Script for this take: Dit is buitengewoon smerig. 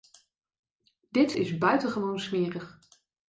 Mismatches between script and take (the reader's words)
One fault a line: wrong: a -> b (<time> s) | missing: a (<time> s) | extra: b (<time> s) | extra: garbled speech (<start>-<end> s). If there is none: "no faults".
no faults